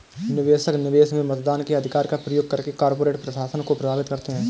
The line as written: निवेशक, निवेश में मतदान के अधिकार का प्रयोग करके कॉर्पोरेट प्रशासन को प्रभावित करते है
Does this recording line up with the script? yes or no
yes